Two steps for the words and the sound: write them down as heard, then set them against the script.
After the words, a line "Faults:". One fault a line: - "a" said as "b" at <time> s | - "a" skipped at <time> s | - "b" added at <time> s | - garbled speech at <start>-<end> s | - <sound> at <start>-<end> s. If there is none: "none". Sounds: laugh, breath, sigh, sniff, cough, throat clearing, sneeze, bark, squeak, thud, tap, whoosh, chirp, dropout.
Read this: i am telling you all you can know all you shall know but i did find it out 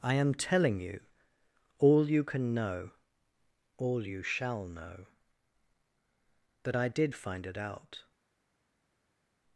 i am telling you all you can know all you shall know that i did find it out
Faults:
- "but" said as "that" at 6.6 s